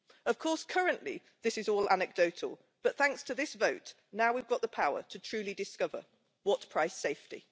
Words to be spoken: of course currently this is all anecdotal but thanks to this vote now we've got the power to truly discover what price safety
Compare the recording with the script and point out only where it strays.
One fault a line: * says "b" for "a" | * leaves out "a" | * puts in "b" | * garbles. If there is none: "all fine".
all fine